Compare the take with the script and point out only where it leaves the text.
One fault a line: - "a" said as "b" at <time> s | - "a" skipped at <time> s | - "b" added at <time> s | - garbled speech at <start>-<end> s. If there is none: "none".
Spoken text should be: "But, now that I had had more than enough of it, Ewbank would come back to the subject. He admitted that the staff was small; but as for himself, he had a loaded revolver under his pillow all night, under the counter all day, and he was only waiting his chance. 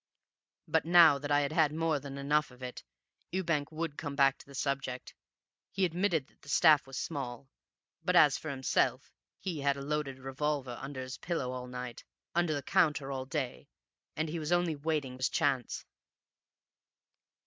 none